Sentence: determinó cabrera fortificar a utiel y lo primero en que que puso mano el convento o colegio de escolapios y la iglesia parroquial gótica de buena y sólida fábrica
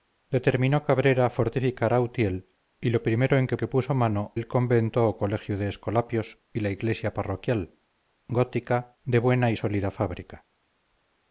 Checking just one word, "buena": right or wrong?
right